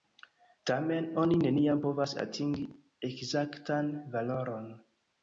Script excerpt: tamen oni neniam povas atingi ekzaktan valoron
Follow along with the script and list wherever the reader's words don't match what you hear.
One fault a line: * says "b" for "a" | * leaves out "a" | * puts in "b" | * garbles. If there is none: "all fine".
all fine